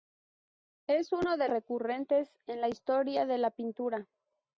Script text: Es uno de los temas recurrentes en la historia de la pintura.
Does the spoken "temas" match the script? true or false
false